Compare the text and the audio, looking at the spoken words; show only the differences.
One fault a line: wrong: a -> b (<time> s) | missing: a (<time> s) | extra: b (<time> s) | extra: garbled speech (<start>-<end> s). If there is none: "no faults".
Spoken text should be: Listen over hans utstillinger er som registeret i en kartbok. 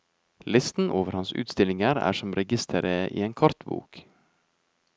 no faults